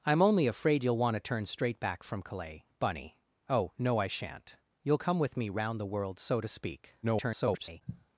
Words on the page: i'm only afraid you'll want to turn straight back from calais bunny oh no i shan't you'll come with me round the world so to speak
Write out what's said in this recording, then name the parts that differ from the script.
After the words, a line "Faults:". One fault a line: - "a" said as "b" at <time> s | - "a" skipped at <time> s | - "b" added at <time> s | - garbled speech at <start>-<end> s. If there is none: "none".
i'm only afraid you'll want to turn straight back from calais bunny oh no i shan't you'll come with me round the world so to speak [garbled]
Faults:
- garbled speech at 7.0-7.8 s